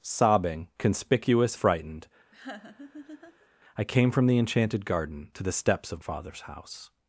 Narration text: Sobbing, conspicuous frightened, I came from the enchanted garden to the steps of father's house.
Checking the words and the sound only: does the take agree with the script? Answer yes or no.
no